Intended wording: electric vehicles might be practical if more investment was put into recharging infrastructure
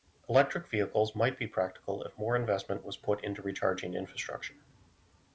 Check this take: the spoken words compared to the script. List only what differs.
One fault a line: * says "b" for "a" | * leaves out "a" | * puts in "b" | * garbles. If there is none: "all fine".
all fine